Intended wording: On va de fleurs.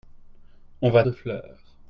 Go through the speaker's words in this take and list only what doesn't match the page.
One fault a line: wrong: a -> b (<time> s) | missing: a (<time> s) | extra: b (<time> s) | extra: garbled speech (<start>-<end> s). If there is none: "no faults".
no faults